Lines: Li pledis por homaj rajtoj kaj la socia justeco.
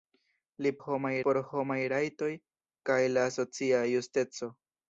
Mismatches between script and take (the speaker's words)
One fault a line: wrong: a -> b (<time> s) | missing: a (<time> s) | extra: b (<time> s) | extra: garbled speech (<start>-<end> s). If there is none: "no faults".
wrong: pledis -> homaj (0.8 s)